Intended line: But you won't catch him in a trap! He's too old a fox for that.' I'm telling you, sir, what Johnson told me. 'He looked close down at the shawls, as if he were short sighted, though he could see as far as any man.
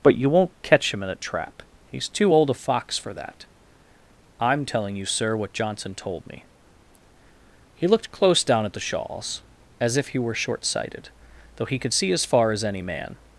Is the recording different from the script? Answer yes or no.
no